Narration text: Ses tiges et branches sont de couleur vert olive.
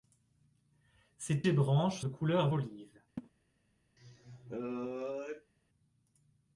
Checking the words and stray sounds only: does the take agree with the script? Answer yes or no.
no